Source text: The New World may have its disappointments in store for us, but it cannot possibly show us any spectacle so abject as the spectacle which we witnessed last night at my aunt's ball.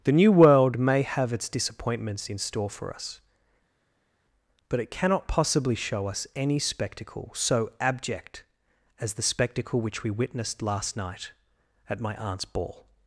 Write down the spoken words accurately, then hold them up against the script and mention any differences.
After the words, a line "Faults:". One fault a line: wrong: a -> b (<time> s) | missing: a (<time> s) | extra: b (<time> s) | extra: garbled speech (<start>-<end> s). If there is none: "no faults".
The New World may have its disappointments in store for us, but it cannot possibly show us any spectacle so abject as the spectacle which we witnessed last night at my aunt's ball.
Faults:
no faults